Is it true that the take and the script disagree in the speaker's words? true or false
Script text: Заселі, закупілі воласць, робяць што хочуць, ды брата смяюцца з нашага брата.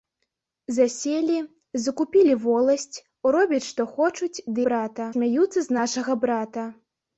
false